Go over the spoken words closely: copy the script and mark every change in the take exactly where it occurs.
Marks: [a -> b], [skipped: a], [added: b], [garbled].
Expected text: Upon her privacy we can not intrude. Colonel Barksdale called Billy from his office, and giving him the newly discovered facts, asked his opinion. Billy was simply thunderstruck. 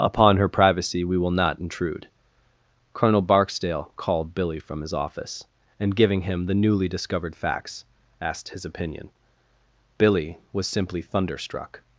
Upon her privacy we [can -> will] not intrude. Colonel Barksdale called Billy from his office, and giving him the newly discovered facts, asked his opinion. Billy was simply thunderstruck.